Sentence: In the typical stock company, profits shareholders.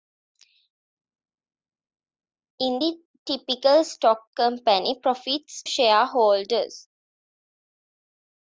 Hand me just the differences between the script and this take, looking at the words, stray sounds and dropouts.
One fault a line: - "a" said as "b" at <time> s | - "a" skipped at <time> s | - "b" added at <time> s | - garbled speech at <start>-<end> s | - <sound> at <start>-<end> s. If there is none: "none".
none